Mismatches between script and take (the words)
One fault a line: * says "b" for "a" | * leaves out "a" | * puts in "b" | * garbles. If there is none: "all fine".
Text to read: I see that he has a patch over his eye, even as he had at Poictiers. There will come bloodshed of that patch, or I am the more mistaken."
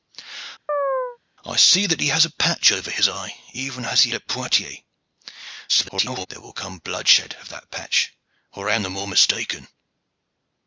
* leaves out "had"
* garbles